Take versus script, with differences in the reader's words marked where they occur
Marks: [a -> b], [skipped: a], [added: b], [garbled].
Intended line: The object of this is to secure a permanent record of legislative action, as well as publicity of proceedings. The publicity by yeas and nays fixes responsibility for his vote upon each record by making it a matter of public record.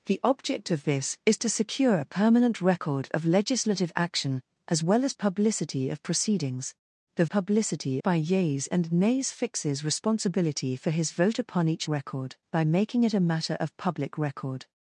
The object of this is to secure a permanent record of legislative action, as well as publicity of proceedings. The publicity by yeas and nays fixes responsibility for his vote upon each record by making it a matter of public record.